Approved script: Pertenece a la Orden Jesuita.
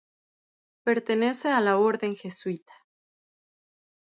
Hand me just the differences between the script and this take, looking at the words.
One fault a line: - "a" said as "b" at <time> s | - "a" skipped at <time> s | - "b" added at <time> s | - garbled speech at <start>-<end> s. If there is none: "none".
none